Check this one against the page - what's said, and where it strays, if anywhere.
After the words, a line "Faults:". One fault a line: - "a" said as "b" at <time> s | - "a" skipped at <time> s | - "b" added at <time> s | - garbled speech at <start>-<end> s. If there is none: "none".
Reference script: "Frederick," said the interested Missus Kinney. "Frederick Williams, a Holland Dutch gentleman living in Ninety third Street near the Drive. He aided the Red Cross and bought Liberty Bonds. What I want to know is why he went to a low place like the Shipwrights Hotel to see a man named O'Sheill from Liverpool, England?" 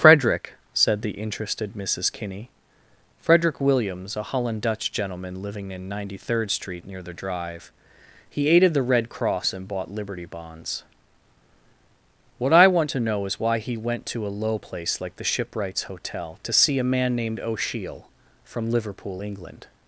"Frederick," said the interested Missus Kinney. "Frederick Williams, a Holland Dutch gentleman living in Ninety third Street near the Drive. He aided the Red Cross and bought Liberty Bonds. What I want to know is why he went to a low place like the Shipwrights Hotel to see a man named O'Sheill from Liverpool, England?"
Faults:
none